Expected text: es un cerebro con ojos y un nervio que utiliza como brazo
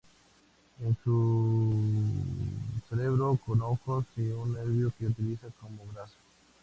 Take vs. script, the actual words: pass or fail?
pass